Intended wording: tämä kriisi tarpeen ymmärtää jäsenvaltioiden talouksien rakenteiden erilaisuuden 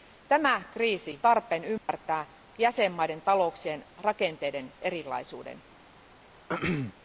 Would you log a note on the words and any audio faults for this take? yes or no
yes